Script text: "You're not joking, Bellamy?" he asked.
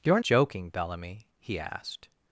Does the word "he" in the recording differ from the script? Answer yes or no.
no